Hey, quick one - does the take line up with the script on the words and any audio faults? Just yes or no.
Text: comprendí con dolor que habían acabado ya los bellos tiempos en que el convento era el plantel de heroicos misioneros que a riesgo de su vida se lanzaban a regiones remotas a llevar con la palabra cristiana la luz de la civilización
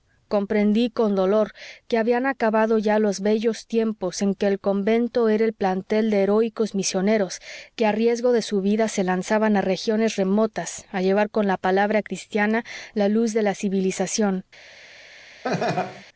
no